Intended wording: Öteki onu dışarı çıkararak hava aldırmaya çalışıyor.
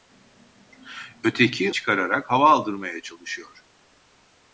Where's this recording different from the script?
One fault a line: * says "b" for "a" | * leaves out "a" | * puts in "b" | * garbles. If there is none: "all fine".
* leaves out "onu dışarı"